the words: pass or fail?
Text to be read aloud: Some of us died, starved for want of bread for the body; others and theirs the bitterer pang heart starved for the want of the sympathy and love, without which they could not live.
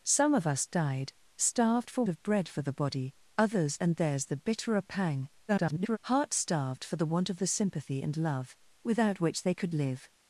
fail